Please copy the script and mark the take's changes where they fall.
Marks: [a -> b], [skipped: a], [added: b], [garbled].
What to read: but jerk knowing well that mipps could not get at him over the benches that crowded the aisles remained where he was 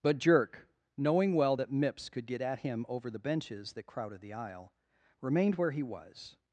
but jerk knowing well that mipps could [skipped: not] get at him over the benches that crowded the [aisles -> aisle] remained where he was